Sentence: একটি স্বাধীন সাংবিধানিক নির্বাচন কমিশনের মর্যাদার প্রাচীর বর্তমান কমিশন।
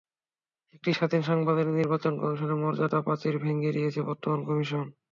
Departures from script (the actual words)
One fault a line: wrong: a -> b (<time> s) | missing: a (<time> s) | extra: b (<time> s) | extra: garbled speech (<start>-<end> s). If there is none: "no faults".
extra: ভেঙে দিয়েছে (3.4 s)